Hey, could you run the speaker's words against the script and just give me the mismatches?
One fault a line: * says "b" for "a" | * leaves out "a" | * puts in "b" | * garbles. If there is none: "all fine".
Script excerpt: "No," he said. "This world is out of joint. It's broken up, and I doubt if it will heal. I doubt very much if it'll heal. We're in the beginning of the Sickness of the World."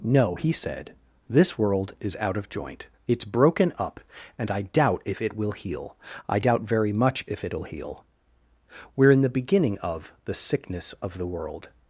all fine